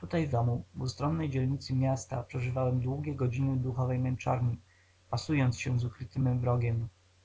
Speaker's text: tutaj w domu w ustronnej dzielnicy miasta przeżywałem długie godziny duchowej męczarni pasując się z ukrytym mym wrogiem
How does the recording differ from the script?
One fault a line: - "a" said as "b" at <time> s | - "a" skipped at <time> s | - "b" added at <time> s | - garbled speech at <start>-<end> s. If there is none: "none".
none